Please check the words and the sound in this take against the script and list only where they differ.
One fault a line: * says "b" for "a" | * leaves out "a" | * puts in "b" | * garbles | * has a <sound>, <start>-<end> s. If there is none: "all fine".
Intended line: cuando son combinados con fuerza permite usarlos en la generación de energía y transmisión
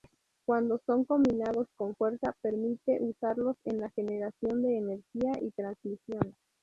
all fine